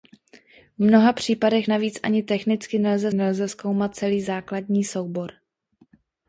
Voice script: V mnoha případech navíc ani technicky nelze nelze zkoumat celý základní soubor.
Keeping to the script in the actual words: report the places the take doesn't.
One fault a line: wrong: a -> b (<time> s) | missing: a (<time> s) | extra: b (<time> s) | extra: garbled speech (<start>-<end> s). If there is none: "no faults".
no faults